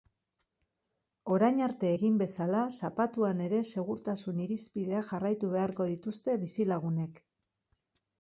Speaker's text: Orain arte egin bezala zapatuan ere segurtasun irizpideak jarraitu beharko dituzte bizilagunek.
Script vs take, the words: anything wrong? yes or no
no